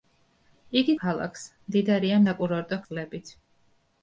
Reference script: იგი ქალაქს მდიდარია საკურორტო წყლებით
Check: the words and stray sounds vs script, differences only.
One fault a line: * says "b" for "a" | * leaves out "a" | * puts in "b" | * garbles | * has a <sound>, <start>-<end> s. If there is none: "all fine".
all fine